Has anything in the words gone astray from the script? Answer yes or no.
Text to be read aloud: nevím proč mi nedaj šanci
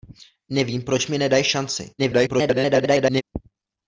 yes